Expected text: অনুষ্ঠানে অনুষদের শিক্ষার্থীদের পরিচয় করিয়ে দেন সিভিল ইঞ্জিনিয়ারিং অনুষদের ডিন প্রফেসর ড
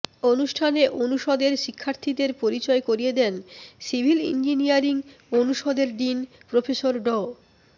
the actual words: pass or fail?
pass